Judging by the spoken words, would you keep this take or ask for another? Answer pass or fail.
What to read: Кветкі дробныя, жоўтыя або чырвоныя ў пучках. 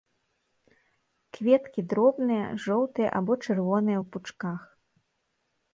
pass